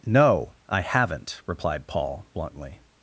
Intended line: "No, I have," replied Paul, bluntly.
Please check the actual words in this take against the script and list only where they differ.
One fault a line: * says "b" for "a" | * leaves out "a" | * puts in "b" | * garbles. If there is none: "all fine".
* says "haven't" for "have"